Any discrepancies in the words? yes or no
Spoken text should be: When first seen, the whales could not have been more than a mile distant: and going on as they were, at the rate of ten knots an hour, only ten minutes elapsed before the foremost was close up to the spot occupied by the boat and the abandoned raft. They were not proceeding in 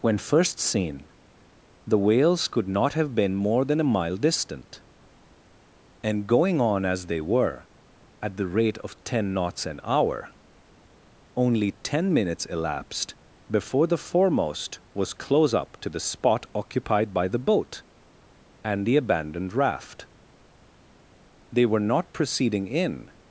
no